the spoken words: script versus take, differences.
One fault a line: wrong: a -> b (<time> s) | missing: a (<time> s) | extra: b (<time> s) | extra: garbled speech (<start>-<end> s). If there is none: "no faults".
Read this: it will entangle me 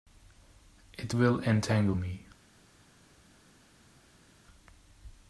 no faults